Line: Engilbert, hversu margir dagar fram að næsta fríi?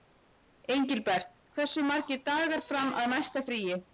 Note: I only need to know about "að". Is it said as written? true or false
true